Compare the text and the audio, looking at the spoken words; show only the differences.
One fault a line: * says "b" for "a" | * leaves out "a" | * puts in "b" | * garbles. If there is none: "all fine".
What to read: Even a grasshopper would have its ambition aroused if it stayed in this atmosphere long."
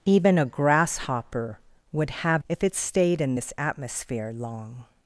* leaves out "its ambition aroused"